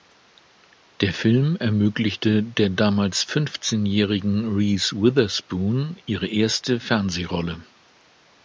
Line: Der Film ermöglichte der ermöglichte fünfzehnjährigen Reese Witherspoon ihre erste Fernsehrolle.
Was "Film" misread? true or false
false